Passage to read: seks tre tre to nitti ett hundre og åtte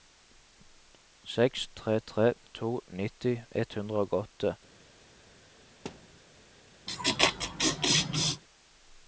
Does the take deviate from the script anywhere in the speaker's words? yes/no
no